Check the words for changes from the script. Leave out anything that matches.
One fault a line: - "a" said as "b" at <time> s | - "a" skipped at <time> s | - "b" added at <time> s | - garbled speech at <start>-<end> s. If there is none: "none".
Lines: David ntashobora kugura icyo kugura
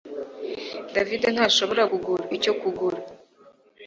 none